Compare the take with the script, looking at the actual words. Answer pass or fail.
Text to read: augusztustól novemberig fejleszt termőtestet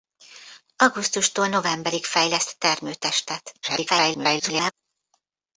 fail